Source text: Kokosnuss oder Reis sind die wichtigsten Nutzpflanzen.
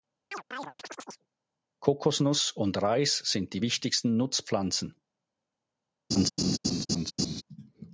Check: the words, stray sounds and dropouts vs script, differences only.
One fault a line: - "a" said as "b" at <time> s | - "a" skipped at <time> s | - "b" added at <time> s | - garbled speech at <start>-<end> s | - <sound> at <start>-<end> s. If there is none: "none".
- chirp at 0.3-1.3 s
- "oder" said as "und" at 2.5 s
- laugh at 6.1-7.4 s